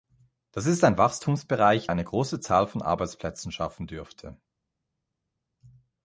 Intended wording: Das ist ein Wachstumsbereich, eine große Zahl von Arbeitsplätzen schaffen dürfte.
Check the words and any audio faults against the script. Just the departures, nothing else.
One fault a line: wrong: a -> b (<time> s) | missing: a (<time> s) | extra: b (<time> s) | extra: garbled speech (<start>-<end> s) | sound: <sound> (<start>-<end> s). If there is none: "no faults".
no faults